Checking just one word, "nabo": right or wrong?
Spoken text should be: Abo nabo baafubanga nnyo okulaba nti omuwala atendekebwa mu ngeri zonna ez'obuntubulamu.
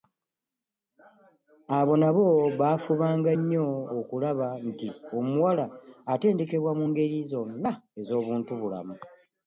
right